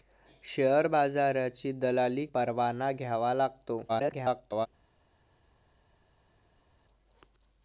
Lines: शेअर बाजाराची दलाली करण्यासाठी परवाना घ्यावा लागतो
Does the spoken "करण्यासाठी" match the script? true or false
false